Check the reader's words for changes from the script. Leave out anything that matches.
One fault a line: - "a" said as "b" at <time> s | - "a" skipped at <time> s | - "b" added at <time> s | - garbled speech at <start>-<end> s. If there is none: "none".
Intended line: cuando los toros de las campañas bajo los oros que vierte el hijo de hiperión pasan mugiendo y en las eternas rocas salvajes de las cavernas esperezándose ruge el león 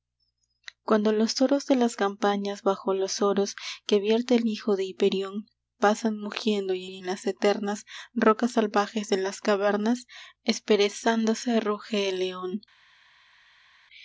- "y" added at 6.8 s